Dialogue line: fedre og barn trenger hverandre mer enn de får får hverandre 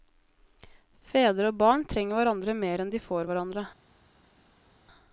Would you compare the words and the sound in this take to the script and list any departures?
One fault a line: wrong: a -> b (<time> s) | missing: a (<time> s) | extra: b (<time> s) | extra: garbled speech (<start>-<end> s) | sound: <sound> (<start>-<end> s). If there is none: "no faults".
missing: får (3.3 s)